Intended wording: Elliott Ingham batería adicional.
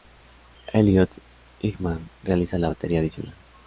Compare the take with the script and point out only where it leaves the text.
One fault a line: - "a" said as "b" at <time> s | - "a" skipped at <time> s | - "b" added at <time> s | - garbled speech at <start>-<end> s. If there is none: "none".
- "realiza la" added at 2.2 s